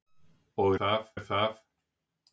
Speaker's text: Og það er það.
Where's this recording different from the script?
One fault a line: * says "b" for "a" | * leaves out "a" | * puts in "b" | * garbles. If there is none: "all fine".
all fine